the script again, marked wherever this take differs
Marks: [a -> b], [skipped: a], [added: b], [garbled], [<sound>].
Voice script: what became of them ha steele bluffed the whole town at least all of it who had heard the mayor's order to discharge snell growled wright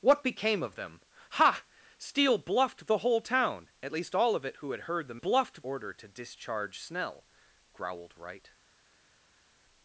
what became of them ha steele bluffed the whole town at least all of it who had heard the [mayor's -> bluffed] order to discharge snell growled wright